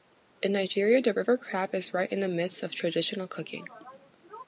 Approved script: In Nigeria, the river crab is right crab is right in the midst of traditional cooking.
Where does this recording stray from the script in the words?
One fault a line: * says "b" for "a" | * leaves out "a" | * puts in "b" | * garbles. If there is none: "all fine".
* leaves out "crab is right"